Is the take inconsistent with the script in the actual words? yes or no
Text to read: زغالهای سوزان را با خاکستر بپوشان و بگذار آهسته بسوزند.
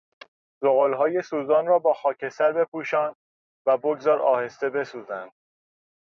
no